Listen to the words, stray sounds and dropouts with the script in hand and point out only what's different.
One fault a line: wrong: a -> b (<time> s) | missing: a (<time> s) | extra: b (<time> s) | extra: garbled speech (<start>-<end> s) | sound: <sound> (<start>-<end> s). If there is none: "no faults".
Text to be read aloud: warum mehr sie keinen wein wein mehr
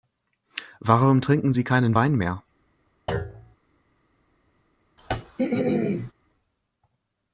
wrong: mehr -> trinken (1.2 s)
missing: wein (2.2 s)
sound: thud (3.1-3.6 s)
sound: throat clearing (5.0-6.1 s)